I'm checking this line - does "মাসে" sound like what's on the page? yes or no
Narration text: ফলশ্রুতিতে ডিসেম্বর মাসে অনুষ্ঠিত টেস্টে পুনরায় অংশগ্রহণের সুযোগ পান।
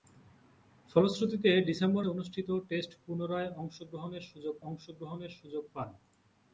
no